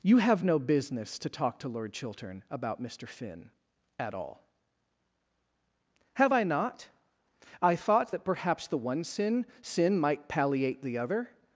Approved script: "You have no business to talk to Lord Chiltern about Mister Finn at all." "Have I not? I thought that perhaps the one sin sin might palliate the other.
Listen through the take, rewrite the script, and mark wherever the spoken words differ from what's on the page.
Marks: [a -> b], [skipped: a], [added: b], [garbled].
"You have no business to talk to Lord Chiltern about Mister Finn at all." "Have I not? I thought that perhaps the one sin sin might palliate the other.